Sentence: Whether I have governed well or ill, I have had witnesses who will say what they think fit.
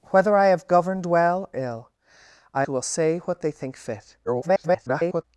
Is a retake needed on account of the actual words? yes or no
yes